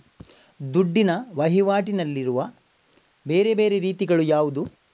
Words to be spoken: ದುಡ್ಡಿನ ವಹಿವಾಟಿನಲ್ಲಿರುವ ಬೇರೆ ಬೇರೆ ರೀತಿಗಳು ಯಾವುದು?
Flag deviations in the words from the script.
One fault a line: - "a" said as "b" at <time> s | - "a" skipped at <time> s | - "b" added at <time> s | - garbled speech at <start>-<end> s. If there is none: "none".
none